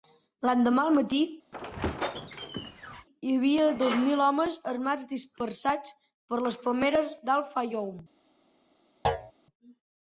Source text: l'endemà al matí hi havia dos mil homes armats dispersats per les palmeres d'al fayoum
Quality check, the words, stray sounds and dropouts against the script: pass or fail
fail